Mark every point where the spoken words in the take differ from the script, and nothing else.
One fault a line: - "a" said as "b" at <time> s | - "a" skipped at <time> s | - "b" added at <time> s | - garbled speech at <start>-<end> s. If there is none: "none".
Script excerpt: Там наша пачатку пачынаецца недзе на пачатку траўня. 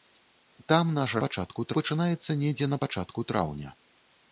none